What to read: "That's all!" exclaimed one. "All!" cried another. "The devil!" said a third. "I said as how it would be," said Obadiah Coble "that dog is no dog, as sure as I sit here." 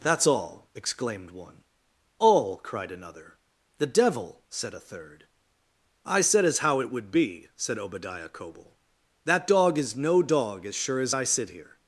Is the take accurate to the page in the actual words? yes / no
yes